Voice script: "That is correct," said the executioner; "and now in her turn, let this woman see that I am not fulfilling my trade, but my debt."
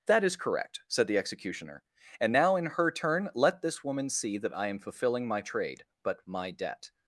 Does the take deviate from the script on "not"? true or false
true